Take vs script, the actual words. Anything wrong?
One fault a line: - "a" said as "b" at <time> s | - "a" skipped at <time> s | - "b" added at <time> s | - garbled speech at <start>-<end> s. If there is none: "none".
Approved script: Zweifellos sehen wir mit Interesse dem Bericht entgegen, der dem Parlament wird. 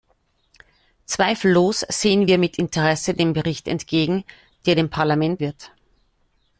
none